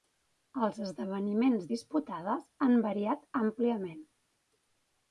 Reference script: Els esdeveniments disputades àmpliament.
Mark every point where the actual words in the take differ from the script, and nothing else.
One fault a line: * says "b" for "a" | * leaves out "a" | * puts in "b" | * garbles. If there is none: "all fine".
* puts in "han variat"